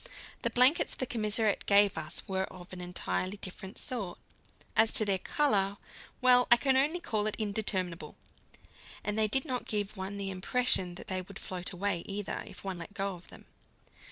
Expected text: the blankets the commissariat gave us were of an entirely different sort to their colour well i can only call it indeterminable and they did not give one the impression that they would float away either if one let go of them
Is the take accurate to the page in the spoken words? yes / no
no